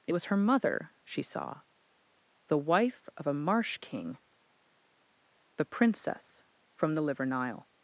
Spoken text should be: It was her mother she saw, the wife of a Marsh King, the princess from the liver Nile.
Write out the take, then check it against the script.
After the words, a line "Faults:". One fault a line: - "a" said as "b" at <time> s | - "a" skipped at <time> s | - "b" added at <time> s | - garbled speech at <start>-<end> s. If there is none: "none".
It was her mother she saw, the wife of a Marsh King, the princess from the liver Nile.
Faults:
none